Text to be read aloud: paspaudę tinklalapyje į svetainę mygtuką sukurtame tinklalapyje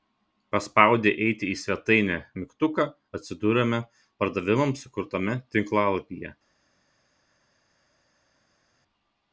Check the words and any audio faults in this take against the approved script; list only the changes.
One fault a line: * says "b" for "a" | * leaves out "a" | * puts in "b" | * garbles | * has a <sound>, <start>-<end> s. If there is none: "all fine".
* says "eiti" for "tinklalapyje"
* puts in "atsiduriame pardavimams"